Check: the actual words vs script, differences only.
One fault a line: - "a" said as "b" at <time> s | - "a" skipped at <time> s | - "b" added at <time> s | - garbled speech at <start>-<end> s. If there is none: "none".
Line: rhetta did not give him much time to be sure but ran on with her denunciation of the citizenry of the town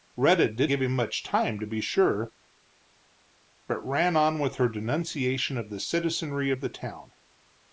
- "not" skipped at 0.7 s